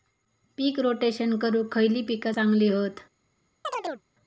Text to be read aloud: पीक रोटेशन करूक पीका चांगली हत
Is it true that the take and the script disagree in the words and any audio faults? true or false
true